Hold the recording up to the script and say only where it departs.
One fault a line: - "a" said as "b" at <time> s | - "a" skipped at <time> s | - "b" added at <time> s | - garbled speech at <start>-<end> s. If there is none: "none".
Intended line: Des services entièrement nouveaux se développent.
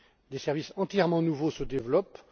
none